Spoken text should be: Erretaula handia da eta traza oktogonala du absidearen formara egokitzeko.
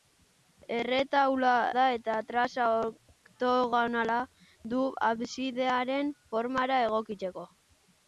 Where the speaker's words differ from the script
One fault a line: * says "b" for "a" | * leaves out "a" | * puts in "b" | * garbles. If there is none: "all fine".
* leaves out "handia"